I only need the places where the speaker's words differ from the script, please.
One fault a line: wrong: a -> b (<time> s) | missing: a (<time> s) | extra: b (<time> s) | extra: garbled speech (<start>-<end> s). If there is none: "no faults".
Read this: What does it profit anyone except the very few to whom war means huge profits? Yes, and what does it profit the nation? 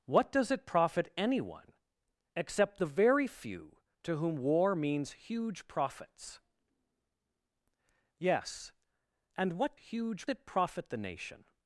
wrong: does -> huge (9.7 s)